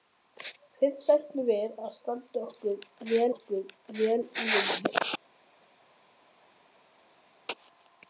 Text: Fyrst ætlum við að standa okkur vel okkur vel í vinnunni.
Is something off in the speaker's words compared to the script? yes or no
no